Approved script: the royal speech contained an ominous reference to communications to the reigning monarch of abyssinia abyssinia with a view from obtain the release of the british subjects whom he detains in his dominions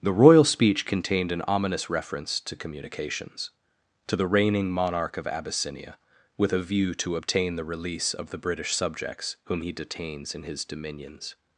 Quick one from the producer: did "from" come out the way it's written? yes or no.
no